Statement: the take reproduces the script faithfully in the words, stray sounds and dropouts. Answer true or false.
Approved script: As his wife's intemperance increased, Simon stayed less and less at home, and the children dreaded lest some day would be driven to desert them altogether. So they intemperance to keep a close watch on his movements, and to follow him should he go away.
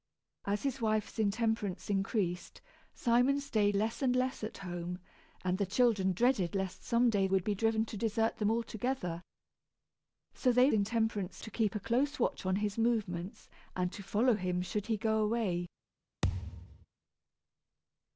false